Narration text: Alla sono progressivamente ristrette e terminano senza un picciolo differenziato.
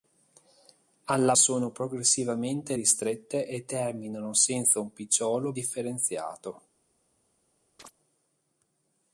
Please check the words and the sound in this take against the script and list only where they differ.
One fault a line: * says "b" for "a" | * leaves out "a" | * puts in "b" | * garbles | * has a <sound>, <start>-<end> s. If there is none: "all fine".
* has a chirp, 7.8-7.9 s